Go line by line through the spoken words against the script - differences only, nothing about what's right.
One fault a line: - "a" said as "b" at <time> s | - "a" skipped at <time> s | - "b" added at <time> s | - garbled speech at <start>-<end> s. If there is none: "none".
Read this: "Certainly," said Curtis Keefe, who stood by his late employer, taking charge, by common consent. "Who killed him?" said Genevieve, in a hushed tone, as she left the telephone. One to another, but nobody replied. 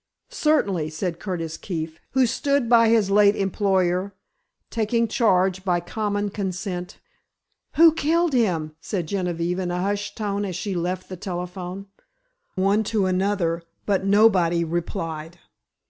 none